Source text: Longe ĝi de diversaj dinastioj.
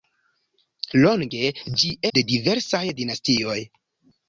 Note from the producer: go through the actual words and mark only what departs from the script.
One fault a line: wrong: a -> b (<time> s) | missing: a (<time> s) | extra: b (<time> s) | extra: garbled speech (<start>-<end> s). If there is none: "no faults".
no faults